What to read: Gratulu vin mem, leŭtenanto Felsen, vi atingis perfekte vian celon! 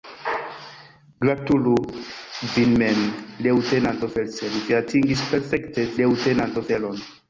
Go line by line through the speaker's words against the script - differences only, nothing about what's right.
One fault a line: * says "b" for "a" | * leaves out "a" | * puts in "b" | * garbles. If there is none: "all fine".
* says "leŭtenanto" for "vian"